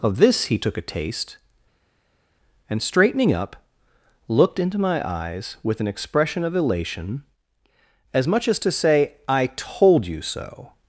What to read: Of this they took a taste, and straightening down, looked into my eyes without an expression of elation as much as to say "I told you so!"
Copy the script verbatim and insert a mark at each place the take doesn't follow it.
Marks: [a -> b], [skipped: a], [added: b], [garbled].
Of this [they -> he] took a taste, and straightening [down, -> up] looked into my eyes [without -> with] an expression of elation as much as to say "I told you so!"